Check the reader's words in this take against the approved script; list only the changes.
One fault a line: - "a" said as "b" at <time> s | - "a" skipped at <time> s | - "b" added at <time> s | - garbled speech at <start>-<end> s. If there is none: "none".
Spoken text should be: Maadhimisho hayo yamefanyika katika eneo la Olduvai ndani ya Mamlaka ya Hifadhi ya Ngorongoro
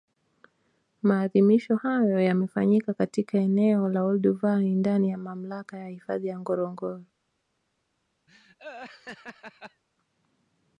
none